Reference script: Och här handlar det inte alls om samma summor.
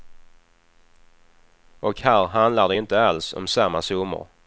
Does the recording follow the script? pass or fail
pass